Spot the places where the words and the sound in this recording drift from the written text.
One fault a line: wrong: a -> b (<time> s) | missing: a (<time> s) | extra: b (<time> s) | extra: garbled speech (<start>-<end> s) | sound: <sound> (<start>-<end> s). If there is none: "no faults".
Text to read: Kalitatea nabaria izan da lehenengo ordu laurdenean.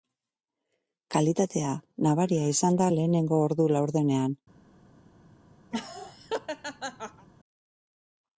sound: laugh (5.7-7.3 s)